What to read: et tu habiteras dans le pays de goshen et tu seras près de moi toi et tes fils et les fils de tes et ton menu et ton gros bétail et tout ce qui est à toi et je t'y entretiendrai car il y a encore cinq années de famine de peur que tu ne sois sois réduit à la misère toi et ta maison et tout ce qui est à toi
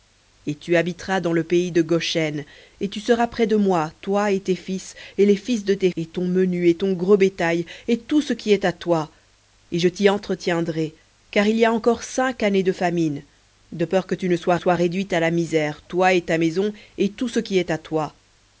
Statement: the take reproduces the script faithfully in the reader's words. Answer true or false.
true